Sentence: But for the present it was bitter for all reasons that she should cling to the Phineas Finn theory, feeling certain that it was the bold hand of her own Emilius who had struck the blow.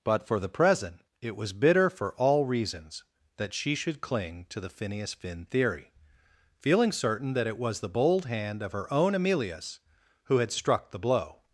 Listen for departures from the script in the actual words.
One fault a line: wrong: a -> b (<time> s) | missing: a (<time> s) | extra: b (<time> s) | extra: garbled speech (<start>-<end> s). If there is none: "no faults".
no faults